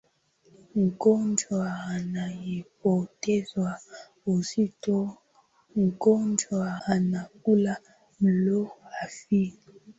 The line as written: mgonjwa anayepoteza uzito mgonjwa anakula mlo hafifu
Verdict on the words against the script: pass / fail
pass